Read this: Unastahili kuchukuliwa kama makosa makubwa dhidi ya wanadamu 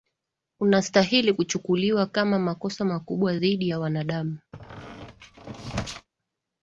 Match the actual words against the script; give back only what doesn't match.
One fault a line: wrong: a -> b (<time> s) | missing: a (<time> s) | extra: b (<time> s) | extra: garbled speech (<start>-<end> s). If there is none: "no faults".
no faults